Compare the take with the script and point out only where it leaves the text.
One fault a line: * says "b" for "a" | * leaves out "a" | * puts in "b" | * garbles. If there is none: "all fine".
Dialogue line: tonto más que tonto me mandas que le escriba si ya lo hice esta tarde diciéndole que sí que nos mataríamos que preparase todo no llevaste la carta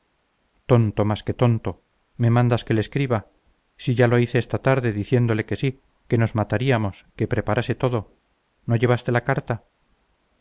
all fine